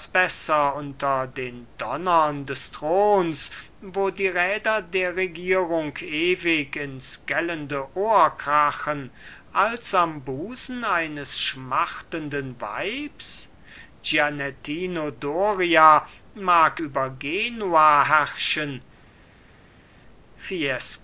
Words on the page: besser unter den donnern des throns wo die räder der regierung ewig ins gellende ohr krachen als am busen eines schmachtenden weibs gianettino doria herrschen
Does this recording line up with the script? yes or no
no